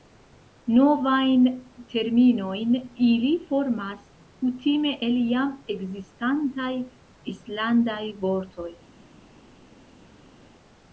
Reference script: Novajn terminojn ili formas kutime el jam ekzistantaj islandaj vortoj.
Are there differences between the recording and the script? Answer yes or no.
no